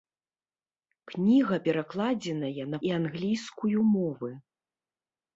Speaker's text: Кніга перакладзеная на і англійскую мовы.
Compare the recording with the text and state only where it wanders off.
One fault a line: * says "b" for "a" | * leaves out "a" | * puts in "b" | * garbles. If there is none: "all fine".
all fine